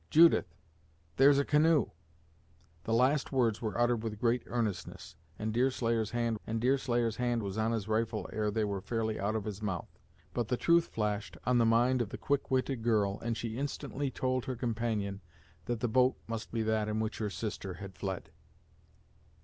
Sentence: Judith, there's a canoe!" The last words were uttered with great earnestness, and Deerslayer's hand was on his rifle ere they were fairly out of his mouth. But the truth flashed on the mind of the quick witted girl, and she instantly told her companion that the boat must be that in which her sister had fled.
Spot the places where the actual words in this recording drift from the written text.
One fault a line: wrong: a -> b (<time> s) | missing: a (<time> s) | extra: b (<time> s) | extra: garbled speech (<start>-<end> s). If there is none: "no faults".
extra: and Deerslayer's hand (6.5 s)